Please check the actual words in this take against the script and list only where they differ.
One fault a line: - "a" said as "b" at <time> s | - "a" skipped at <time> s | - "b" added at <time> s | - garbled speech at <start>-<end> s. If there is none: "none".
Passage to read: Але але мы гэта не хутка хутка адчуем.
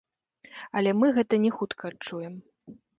- "але" skipped at 0.9 s
- "хутка" skipped at 1.8 s